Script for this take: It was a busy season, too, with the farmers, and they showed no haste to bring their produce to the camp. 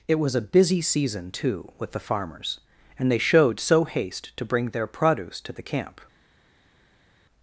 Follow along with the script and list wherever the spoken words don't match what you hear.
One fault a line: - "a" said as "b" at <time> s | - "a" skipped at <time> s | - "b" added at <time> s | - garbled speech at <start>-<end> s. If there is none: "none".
- "no" said as "so" at 3.6 s